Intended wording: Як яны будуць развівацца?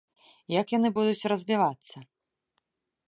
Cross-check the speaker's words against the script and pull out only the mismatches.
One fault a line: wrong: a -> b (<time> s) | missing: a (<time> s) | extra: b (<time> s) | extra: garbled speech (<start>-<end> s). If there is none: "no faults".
no faults